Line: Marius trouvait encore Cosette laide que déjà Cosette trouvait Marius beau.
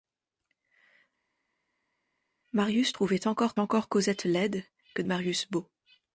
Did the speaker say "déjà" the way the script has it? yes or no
no